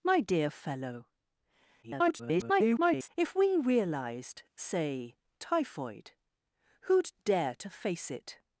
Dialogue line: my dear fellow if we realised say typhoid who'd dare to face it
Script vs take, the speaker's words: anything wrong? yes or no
yes